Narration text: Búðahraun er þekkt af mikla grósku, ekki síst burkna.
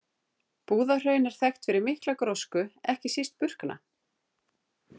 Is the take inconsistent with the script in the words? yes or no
yes